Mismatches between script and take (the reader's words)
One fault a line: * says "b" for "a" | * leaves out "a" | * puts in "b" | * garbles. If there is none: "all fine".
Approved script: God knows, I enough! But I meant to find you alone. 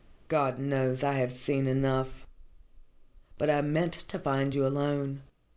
* puts in "have seen"